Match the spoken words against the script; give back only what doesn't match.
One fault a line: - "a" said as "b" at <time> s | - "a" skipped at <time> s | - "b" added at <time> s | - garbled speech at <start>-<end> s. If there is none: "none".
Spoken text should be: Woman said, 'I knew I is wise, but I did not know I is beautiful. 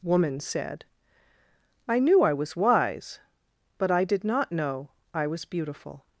- "is" said as "was" at 2.3 s
- "is" said as "was" at 5.3 s